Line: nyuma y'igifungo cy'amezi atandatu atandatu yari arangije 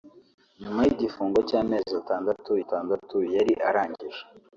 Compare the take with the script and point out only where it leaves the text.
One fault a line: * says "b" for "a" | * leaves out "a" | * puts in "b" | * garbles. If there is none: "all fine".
all fine